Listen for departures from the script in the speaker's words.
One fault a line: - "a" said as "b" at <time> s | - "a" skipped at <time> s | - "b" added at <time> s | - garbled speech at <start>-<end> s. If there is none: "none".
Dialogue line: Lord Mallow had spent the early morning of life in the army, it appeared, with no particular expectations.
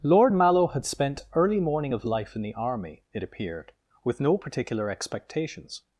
- "the" skipped at 1.3 s